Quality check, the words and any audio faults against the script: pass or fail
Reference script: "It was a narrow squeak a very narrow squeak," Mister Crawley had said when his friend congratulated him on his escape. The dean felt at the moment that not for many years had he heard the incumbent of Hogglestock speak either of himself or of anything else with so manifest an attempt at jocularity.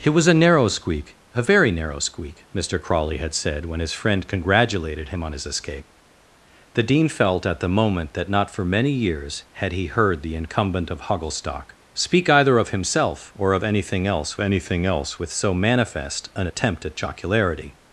fail